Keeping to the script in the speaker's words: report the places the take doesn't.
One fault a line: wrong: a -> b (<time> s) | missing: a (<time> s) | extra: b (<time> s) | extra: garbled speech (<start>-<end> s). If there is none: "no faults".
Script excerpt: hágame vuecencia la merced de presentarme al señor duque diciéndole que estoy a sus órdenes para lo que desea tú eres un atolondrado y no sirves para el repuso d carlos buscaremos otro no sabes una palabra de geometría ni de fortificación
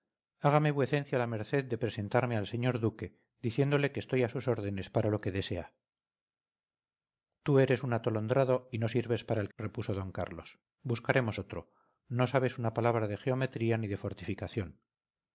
no faults